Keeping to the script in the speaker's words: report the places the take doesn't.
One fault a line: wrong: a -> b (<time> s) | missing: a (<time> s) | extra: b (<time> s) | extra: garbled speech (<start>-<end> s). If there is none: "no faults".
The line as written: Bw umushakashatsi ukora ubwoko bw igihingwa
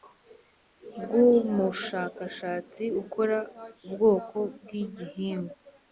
no faults